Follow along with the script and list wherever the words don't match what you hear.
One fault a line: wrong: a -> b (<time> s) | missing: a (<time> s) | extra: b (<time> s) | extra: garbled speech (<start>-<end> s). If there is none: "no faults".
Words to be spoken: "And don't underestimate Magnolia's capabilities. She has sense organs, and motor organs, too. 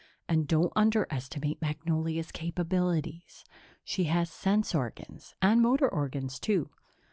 no faults